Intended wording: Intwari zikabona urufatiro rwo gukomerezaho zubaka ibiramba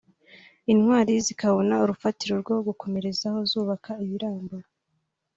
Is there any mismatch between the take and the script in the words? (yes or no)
no